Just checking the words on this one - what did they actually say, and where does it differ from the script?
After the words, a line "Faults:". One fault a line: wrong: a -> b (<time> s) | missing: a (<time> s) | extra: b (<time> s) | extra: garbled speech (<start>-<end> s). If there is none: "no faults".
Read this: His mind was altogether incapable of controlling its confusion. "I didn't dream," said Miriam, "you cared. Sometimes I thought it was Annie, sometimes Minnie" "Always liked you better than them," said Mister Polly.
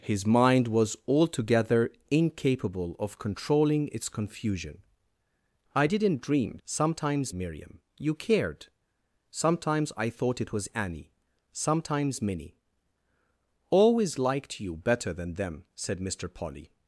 His mind was altogether incapable of controlling its confusion. "I didn't dream," sometimes Miriam, "you cared. Sometimes I thought it was Annie, sometimes Minnie" "Always liked you better than them," said Mister Polly.
Faults:
wrong: said -> sometimes (6.7 s)